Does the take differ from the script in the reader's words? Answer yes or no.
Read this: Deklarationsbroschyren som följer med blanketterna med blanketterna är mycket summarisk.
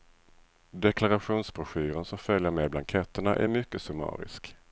yes